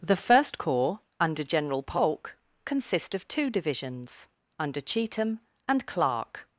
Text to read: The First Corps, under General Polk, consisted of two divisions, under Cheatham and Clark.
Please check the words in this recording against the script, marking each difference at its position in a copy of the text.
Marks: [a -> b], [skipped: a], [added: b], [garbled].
The First Corps, under General Polk, [consisted -> consist] of two divisions, under Cheatham and Clark.